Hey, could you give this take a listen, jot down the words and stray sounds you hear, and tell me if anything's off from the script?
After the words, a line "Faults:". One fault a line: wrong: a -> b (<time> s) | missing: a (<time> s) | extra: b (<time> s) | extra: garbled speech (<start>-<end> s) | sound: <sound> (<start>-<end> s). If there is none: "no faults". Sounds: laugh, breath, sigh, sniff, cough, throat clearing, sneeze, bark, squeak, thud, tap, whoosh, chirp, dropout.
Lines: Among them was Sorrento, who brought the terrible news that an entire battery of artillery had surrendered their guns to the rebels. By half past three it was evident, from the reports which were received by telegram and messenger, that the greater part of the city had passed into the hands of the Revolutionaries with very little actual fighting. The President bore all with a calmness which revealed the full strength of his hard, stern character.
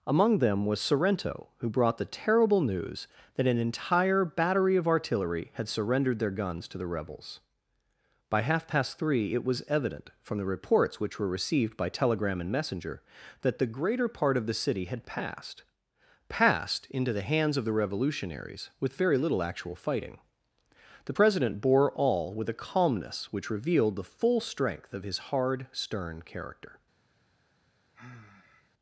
Among them was Sorrento, who brought the terrible news that an entire battery of artillery had surrendered their guns to the rebels. By half past three it was evident, from the reports which were received by telegram and messenger, that the greater part of the city had passed passed into the hands of the Revolutionaries with very little actual fighting. The President bore all with a calmness which revealed the full strength of his hard, stern character.
Faults:
extra: passed (16.3 s)
sound: sigh (27.9-28.7 s)